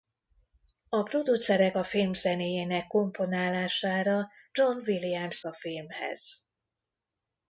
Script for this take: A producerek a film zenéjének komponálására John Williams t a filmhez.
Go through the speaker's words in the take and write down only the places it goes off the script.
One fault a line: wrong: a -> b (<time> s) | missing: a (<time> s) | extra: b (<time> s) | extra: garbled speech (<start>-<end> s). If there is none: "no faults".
no faults